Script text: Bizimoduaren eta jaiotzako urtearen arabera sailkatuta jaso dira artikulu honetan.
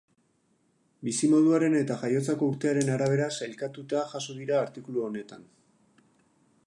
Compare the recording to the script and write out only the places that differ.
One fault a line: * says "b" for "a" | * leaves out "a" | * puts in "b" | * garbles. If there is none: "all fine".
all fine